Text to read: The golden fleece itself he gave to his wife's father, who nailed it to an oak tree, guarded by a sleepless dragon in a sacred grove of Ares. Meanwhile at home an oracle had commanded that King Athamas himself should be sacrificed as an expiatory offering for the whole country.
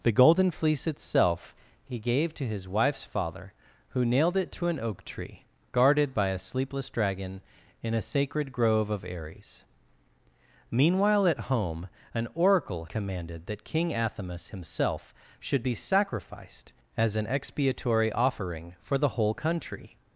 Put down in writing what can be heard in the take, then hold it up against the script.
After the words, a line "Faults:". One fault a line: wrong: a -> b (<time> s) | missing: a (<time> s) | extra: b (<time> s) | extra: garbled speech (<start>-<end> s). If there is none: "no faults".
The golden fleece itself he gave to his wife's father, who nailed it to an oak tree, guarded by a sleepless dragon in a sacred grove of Ares. Meanwhile at home an oracle commanded that King Athamas himself should be sacrificed as an expiatory offering for the whole country.
Faults:
missing: had (12.8 s)